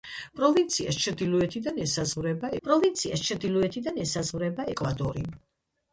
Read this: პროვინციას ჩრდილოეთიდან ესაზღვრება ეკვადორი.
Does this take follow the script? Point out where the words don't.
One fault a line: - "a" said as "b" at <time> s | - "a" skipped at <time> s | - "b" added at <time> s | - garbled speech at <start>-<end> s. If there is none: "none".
- "პროვინციას ჩრდილოეთიდან ესაზღვრება" added at 2.6 s